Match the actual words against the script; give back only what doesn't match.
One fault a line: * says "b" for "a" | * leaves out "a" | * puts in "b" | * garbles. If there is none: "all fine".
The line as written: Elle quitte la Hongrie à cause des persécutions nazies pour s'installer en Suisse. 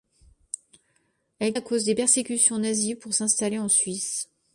* leaves out "quitte la Hongrie"